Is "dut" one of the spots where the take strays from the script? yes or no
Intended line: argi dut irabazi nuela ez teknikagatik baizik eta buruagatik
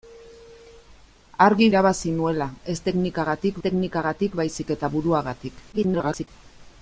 yes